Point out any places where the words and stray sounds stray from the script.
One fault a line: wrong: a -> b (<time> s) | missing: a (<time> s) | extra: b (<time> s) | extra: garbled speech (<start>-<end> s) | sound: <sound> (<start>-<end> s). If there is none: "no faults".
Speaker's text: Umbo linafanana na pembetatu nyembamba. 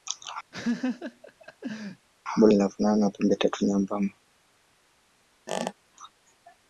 sound: laugh (0.5-2.1 s)
sound: squeak (5.5-5.7 s)